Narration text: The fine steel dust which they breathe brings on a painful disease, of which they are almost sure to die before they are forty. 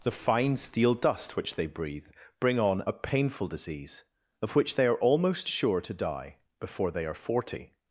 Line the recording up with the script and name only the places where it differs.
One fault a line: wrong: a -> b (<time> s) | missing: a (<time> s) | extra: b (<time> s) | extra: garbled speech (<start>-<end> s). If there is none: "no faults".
wrong: brings -> bring (2.4 s)